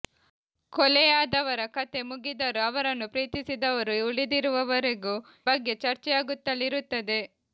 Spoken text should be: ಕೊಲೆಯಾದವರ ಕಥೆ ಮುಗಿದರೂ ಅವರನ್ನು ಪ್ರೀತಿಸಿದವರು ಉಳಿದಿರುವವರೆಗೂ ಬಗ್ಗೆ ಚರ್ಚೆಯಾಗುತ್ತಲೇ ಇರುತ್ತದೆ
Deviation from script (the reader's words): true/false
false